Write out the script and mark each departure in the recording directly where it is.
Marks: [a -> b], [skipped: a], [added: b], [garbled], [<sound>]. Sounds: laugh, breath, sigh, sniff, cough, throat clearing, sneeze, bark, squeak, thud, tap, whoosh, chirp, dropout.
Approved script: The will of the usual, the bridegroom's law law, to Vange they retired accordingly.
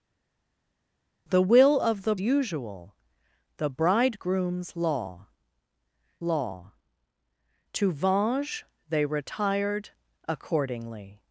The will of the usual, the bridegroom's law law, to Vange they retired accordingly.